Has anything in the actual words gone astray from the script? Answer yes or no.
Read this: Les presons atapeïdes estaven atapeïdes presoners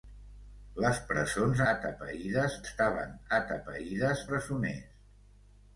no